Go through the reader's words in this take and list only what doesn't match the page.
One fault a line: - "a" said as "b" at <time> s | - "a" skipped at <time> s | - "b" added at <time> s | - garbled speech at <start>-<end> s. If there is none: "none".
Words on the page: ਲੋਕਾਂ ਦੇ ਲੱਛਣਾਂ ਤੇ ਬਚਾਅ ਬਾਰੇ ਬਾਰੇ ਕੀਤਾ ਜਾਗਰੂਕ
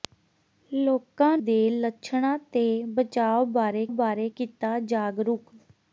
none